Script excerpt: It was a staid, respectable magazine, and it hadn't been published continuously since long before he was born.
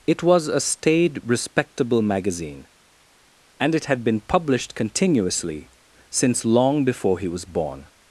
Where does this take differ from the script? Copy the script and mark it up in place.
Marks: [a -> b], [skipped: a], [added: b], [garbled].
It was a staid, respectable magazine, and it [hadn't -> had] been published continuously since long before he was born.